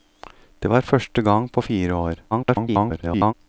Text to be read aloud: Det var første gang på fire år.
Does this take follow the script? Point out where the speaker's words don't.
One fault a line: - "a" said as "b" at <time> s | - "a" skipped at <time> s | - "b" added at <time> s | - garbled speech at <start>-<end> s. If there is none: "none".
- garbled speech at 2.3-3.3 s